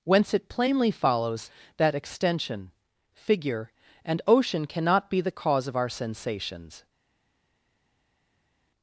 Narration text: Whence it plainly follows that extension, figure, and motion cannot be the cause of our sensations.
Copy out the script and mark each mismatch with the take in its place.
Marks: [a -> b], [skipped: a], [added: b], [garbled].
Whence it plainly follows that extension, figure, and [motion -> ocean] cannot be the cause of our sensations.